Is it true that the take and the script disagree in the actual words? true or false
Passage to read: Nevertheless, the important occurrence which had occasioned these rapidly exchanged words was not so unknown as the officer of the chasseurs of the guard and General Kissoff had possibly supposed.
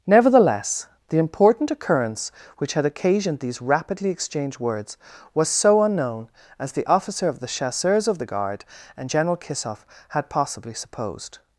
true